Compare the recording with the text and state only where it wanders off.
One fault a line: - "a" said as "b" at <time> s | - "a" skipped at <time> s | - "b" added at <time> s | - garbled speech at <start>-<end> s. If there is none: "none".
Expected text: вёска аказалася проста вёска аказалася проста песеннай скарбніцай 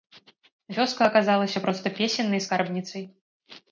- "вёска аказалася проста" skipped at 1.9 s